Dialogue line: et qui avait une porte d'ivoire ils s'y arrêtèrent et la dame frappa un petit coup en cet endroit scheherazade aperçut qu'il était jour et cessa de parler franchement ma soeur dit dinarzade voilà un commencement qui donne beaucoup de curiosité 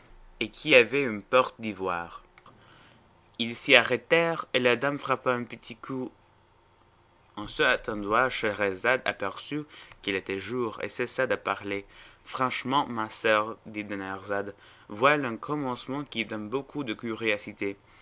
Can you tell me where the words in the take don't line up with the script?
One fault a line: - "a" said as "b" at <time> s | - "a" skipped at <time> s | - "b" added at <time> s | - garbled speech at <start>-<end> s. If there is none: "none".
none